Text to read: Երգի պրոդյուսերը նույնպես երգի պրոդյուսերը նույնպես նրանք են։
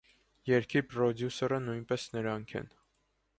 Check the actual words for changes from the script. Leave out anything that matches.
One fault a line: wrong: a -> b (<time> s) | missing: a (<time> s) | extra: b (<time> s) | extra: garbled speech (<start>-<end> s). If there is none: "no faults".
missing: երգի պրոդյուսերը նույնպես (2.1 s)